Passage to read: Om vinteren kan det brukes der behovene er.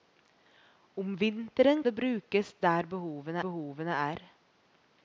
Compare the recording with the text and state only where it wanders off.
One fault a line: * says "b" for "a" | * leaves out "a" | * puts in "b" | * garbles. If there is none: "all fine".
* leaves out "kan"
* puts in "behovene"